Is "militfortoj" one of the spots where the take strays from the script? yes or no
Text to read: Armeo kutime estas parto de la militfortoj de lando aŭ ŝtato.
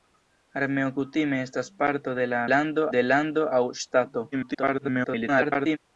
yes